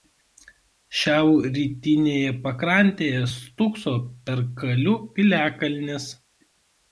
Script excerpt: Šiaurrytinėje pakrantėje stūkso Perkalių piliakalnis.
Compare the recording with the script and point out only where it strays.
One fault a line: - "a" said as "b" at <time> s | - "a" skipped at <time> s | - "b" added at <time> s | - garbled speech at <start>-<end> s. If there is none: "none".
none